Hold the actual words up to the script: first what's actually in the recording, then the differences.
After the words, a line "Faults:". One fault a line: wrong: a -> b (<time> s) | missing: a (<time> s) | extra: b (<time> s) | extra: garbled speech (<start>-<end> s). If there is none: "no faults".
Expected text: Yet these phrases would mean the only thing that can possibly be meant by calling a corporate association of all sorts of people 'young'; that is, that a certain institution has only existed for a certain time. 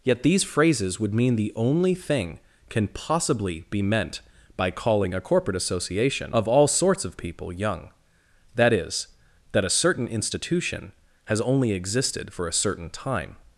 Yet these phrases would mean the only thing can possibly be meant by calling a corporate association of all sorts of people 'young'; that is, that a certain institution has only existed for a certain time.
Faults:
missing: that (2.4 s)